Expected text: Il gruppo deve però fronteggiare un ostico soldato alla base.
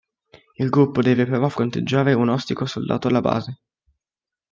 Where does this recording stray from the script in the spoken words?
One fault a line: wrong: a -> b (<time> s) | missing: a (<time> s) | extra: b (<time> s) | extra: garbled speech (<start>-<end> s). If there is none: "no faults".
no faults